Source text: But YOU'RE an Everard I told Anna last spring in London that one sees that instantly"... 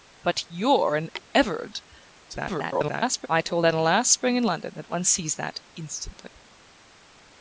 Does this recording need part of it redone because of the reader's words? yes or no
yes